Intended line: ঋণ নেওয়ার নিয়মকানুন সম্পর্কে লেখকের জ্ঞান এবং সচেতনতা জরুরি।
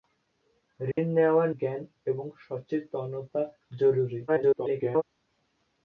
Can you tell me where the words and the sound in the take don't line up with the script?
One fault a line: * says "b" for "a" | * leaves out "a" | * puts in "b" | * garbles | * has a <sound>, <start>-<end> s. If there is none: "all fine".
* has a dropout, 0.9-1.0 s
* leaves out "নিয়মকানুন সম্পর্কে লেখকের"
* garbles